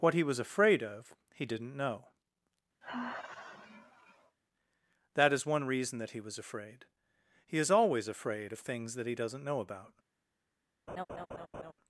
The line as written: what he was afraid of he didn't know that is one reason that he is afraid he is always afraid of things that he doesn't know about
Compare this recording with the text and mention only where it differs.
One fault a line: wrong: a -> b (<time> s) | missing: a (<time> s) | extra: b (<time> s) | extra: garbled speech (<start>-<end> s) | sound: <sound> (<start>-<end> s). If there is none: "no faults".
sound: sigh (2.8-4.4 s)
wrong: is -> was (6.2 s)
sound: laugh (10.9-11.7 s)